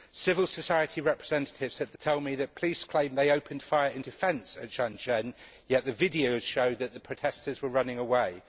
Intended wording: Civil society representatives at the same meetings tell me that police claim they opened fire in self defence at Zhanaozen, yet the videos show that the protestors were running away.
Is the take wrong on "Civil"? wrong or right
right